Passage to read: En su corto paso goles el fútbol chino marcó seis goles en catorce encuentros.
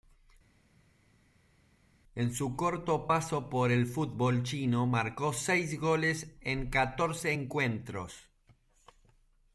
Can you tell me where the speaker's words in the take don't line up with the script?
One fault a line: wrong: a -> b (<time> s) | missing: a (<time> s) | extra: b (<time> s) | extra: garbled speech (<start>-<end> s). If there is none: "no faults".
wrong: goles -> por (3.5 s)